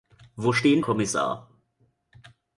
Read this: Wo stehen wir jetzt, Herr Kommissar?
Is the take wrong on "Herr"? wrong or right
wrong